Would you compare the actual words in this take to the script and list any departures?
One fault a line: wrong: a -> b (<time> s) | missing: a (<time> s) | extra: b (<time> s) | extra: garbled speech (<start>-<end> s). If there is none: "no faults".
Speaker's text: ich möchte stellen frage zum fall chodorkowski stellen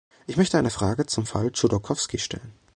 wrong: stellen -> eine (0.6 s)